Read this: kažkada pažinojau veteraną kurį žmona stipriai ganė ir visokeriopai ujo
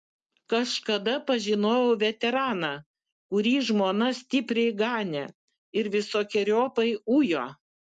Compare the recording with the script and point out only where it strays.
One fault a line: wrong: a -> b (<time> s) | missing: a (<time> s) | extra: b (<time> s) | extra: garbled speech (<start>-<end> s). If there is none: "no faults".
no faults